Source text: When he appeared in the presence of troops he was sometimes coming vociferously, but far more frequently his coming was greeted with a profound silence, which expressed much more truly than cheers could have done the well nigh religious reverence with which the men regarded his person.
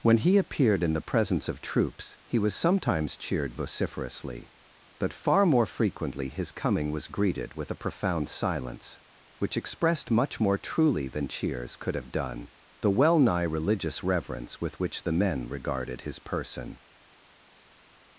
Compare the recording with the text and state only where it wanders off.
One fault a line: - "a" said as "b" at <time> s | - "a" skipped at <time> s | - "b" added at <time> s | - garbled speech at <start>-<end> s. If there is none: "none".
- "coming" said as "cheered" at 3.2 s